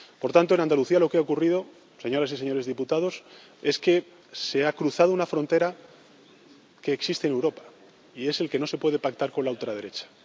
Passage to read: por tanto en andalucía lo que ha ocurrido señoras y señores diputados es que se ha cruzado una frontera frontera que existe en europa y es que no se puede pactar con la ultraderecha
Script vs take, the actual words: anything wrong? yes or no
yes